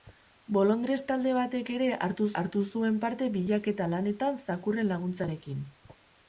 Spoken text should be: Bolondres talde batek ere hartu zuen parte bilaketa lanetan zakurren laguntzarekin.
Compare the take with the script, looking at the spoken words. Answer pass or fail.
fail